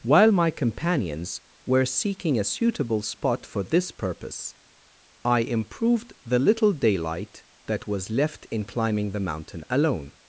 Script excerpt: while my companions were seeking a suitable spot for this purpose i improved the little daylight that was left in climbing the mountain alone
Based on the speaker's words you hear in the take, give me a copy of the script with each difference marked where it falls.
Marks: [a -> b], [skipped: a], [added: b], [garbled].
while my companions were seeking a suitable spot for this purpose i improved the little daylight that was left in climbing the mountain alone